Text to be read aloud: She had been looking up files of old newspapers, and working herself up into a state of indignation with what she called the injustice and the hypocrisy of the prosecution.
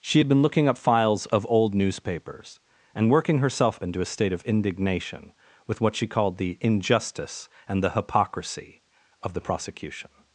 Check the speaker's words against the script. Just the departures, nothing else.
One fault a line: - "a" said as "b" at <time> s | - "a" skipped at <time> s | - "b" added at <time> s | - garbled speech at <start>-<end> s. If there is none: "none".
- "up" skipped at 3.8 s